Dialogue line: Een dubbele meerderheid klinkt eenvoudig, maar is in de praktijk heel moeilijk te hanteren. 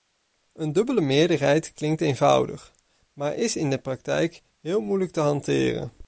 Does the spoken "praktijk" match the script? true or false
true